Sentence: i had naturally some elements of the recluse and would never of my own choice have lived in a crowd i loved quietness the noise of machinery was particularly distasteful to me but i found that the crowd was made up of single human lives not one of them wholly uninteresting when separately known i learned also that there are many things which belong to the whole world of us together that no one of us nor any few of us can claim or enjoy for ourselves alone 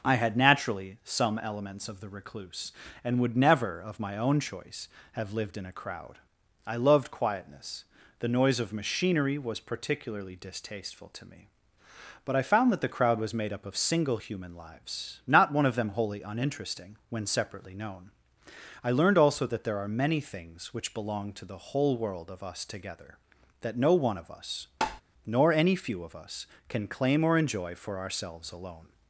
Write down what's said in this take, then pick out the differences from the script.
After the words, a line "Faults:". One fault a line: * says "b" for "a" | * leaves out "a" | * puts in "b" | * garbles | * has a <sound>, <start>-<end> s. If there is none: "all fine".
i had naturally some elements of the recluse and would never of my own choice have lived in a crowd i loved quietness the noise of machinery was particularly distasteful to me but i found that the crowd was made up of single human lives not one of them wholly uninteresting when separately known i learned also that there are many things which belong to the whole world of us together that no one of us nor any few of us can claim or enjoy for ourselves alone
Faults:
* has a tap, 24.8-25.0 s